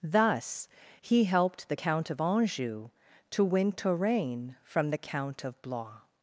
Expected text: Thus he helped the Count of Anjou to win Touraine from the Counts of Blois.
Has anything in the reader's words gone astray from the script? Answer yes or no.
yes